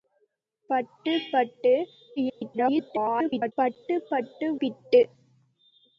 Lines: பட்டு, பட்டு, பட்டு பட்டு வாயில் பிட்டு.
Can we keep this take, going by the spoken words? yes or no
no